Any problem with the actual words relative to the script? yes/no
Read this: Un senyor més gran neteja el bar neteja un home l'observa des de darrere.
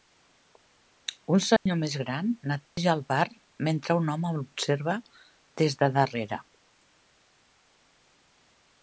yes